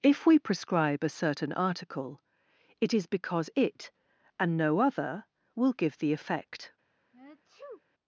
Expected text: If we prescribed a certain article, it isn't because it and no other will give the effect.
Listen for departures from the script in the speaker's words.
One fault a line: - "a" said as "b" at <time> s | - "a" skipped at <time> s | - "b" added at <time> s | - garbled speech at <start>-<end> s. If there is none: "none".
- "prescribed" said as "prescribe" at 0.4 s
- "isn't" said as "is" at 2.9 s